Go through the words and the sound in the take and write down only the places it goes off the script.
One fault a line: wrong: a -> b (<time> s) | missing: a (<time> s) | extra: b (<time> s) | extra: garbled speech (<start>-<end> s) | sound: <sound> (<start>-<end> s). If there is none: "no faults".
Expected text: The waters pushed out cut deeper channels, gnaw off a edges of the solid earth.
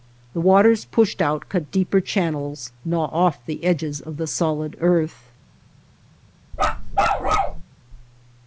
wrong: a -> the (3.5 s)
sound: bark (6.5-7.6 s)